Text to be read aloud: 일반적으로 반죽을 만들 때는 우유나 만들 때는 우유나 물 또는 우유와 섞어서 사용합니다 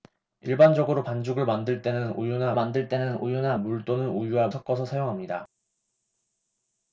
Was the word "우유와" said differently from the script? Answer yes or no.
no